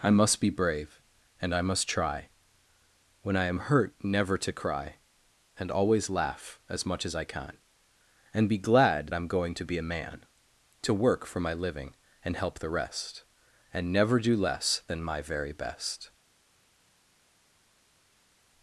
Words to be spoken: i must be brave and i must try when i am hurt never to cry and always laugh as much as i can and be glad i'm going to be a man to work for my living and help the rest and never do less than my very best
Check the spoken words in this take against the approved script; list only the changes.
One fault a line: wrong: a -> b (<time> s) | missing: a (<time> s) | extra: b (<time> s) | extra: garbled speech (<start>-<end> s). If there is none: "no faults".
no faults